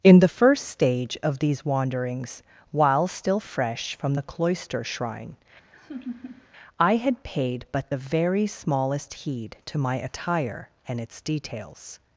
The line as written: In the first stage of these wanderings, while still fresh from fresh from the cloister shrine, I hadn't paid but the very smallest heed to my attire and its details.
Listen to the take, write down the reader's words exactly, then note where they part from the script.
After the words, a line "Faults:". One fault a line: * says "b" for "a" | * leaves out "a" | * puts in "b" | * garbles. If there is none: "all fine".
In the first stage of these wanderings, while still fresh from the cloister shrine, I had paid but the very smallest heed to my attire and its details.
Faults:
* leaves out "fresh from"
* says "had" for "hadn't"